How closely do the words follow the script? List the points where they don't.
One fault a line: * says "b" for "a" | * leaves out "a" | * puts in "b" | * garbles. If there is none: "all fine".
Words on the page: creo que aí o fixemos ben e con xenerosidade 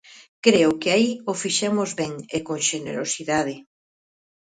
all fine